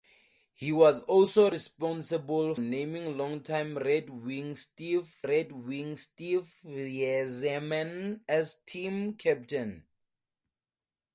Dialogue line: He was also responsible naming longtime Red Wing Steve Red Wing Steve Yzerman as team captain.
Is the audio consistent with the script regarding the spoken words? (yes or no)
yes